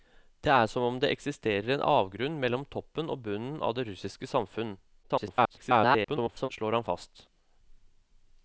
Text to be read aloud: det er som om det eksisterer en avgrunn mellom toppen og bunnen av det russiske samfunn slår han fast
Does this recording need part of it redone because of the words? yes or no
yes